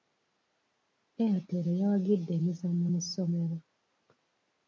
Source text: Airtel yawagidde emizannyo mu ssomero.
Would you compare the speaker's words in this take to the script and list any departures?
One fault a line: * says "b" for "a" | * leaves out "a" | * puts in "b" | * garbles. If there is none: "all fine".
all fine